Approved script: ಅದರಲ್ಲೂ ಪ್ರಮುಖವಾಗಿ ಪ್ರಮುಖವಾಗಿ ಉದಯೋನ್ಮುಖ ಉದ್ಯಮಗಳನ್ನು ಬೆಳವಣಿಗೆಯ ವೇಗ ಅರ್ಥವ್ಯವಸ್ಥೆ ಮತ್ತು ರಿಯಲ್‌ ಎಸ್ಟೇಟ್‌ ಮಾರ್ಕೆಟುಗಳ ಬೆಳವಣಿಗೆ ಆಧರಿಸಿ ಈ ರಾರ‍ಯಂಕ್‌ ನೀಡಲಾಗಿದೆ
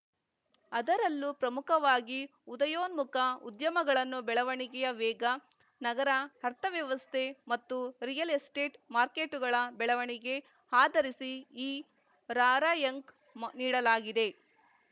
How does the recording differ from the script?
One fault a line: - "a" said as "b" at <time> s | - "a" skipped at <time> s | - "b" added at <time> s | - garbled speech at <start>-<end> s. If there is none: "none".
- "ಪ್ರಮುಖವಾಗಿ" skipped at 2.2 s
- "ನಗರ" added at 5.8 s